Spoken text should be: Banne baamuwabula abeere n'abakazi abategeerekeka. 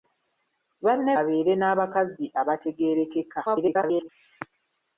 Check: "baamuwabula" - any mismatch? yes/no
yes